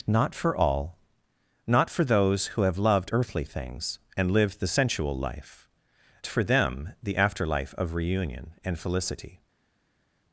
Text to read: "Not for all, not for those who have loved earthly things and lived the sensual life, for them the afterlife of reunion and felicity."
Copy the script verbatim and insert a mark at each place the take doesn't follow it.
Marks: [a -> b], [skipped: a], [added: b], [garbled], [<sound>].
"Not for all, not for those who have loved earthly things and lived the sensual life, for them the afterlife of reunion and felicity."